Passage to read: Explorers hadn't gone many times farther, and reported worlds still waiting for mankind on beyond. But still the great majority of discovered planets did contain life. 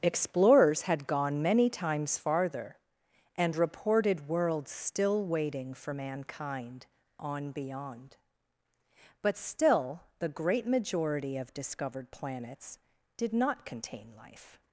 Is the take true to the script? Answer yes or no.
no